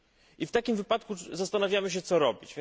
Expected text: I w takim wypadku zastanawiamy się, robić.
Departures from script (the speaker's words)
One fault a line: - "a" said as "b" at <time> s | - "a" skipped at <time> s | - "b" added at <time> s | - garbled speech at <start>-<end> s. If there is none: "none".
- "co" added at 2.0 s